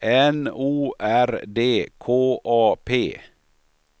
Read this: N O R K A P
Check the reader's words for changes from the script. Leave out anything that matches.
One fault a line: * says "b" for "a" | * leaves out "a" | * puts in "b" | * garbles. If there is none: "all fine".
* puts in "D"